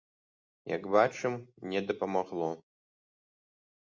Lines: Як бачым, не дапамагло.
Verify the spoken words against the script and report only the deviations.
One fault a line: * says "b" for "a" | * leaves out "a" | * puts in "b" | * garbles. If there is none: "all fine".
all fine